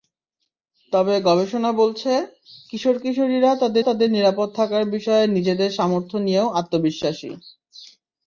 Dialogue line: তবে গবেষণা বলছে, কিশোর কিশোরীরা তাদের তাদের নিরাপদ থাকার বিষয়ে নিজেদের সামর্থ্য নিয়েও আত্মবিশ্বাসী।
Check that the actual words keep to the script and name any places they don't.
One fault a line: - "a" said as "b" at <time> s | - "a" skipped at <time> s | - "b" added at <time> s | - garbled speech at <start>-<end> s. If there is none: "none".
none